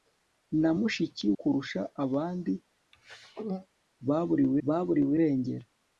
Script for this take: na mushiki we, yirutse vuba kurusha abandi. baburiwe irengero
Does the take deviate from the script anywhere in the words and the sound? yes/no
yes